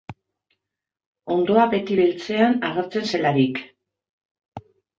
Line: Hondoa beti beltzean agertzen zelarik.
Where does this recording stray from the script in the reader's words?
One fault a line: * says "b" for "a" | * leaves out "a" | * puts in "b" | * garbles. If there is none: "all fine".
all fine